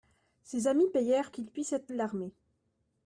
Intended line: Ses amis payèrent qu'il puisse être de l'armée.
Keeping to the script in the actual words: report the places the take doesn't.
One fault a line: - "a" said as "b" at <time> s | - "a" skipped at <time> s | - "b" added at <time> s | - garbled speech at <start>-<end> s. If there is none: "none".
none